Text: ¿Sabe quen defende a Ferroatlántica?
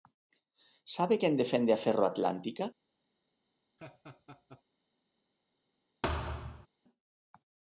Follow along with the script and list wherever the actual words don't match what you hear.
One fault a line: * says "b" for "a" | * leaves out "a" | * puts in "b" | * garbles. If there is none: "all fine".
all fine